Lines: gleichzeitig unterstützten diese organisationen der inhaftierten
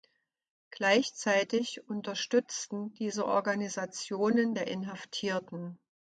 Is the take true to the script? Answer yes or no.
yes